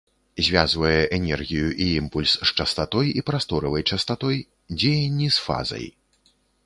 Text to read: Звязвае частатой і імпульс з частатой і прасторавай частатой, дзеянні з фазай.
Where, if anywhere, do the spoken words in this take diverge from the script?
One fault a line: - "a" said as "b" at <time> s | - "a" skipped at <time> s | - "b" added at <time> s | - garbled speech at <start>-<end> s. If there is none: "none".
- "частатой" said as "энергію" at 1.2 s